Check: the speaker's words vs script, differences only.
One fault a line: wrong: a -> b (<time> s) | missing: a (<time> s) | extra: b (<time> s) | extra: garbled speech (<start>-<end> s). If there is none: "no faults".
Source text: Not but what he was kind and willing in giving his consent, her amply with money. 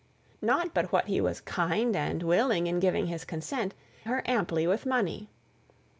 no faults